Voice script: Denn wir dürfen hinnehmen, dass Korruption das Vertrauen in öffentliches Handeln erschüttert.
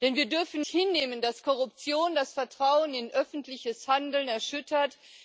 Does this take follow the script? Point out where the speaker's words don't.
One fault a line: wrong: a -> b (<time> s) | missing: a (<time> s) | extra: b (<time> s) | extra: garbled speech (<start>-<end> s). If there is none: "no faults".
no faults